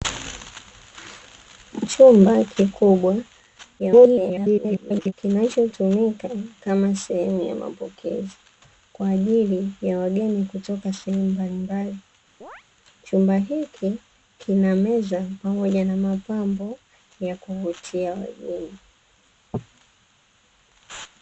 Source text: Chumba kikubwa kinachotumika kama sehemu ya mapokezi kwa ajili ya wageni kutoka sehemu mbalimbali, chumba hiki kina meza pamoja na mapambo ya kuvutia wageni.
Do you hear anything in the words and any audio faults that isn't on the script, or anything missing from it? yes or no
yes